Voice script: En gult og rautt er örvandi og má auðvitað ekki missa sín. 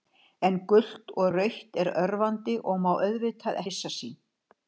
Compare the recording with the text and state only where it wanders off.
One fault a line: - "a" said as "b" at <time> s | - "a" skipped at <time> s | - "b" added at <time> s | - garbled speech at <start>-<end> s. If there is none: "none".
- "ekki" skipped at 3.6 s